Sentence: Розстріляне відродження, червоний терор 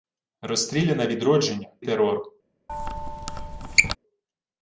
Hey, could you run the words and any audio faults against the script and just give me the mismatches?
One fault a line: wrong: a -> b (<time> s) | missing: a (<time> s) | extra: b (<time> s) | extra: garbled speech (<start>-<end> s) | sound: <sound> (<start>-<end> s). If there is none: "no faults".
missing: червоний (1.7 s)
sound: squeak (2.7-4.0 s)